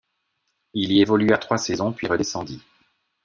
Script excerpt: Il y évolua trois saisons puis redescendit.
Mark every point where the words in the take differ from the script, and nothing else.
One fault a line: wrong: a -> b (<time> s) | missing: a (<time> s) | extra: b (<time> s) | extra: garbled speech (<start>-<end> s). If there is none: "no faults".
no faults